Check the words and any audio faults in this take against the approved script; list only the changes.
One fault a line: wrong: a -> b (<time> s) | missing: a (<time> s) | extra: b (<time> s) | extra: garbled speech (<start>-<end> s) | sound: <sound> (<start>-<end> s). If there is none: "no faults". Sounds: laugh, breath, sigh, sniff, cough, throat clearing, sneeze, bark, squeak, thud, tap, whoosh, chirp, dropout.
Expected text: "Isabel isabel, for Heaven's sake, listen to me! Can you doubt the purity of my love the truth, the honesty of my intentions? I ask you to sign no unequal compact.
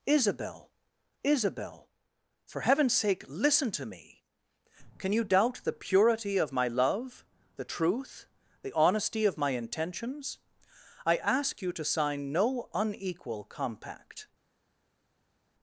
no faults